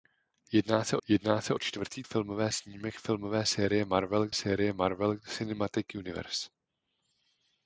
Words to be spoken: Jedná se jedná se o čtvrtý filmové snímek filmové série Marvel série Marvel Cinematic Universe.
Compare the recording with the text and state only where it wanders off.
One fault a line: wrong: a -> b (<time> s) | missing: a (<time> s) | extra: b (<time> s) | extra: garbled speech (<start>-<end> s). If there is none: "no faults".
no faults